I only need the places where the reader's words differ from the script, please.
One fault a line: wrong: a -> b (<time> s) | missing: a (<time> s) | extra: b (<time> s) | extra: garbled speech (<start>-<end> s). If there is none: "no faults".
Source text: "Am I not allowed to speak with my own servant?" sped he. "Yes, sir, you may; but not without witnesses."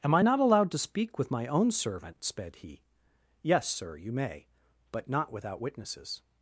no faults